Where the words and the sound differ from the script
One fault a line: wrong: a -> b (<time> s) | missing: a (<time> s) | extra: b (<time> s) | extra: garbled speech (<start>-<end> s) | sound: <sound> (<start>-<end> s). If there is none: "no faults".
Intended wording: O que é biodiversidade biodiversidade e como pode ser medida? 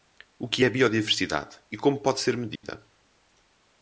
missing: biodiversidade (1.6 s)
sound: dropout (2.6-2.6 s)